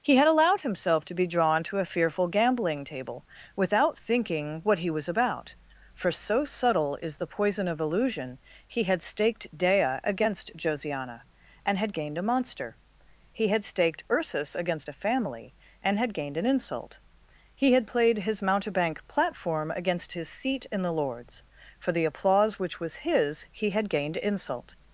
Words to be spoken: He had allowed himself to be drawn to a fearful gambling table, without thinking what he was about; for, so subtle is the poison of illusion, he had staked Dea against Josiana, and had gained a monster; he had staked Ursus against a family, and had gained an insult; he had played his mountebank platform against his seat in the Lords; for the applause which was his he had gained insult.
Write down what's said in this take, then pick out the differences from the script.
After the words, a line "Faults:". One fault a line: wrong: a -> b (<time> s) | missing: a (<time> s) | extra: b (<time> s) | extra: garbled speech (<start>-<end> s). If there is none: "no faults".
He had allowed himself to be drawn to a fearful gambling table, without thinking what he was about; for, so subtle is the poison of illusion, he had staked Dea against Josiana, and had gained a monster; he had staked Ursus against a family, and had gained an insult; he had played his mountebank platform against his seat in the Lords; for the applause which was his he had gained insult.
Faults:
no faults